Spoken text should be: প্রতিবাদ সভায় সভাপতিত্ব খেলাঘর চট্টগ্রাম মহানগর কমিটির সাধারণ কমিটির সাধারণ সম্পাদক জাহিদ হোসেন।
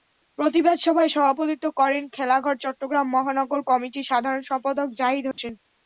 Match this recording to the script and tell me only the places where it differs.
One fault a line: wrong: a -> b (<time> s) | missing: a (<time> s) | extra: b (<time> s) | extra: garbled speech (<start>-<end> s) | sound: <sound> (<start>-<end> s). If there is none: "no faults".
extra: করেন (1.8 s)
missing: কমিটির সাধারণ (4.4 s)
sound: dropout (5.3-5.4 s)